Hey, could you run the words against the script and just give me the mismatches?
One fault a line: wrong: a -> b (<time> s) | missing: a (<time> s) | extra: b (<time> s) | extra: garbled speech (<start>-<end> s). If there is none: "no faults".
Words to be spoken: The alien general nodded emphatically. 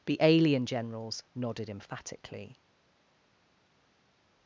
wrong: general -> generals (0.7 s)